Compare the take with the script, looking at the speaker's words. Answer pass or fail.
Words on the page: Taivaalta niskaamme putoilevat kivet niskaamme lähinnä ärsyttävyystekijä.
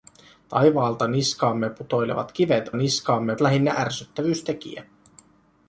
pass